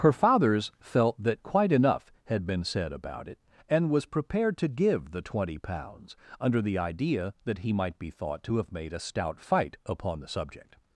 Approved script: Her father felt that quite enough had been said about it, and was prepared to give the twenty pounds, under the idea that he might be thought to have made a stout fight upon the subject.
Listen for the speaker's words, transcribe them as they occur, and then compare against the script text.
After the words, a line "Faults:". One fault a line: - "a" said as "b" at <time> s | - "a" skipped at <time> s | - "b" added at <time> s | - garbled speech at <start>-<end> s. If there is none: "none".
Her fathers felt that quite enough had been said about it, and was prepared to give the twenty pounds, under the idea that he might be thought to have made a stout fight upon the subject.
Faults:
- "father" said as "fathers" at 0.1 s